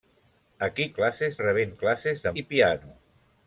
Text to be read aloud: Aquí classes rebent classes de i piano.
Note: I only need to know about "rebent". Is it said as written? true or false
true